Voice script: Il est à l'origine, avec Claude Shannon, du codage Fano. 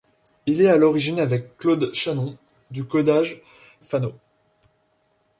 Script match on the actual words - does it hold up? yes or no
yes